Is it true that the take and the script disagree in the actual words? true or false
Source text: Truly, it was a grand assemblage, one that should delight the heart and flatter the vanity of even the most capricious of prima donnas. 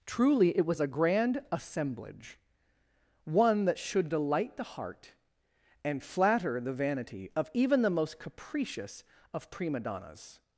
false